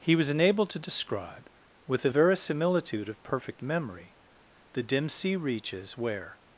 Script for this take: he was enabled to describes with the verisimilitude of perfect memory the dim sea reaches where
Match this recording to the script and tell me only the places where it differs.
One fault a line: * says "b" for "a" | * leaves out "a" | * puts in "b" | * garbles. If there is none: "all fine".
* says "describe" for "describes"